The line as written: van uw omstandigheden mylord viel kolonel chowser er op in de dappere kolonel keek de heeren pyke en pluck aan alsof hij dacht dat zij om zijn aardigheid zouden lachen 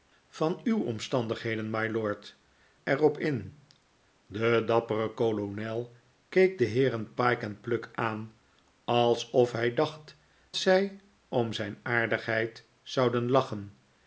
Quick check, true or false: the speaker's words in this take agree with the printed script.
false